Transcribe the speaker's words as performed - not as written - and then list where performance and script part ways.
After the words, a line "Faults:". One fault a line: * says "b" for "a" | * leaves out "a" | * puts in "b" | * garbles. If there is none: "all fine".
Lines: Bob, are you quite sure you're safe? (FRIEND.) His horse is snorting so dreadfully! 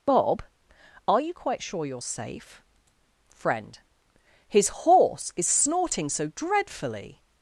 Bob, are you quite sure you're safe? (FRIEND.) His horse is snorting so dreadfully!
Faults:
all fine